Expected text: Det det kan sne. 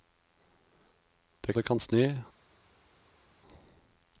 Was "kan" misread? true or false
false